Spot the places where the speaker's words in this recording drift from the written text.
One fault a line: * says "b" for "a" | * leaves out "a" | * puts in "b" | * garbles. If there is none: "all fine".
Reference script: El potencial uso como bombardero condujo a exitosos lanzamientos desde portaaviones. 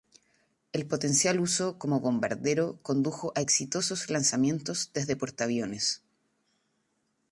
all fine